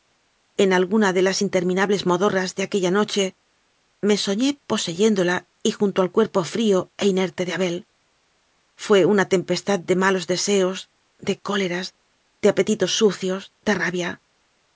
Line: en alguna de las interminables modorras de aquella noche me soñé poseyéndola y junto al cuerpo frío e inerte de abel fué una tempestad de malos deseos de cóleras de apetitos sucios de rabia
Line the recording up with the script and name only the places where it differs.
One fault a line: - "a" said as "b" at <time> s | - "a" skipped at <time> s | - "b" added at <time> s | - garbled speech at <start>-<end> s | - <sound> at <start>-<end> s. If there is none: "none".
none